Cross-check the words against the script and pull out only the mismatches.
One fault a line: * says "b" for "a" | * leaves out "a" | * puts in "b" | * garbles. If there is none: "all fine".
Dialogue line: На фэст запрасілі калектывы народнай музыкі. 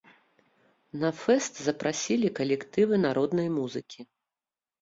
all fine